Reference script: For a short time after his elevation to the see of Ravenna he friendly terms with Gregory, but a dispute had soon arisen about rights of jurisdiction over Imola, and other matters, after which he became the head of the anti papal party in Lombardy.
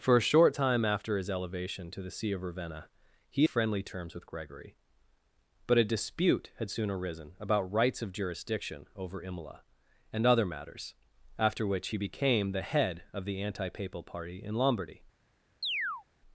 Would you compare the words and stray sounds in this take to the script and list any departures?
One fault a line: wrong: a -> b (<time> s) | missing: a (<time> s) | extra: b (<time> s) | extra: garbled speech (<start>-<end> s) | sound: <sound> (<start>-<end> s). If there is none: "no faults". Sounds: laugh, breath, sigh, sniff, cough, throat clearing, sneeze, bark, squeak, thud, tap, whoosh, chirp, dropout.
sound: chirp (15.6-16.0 s)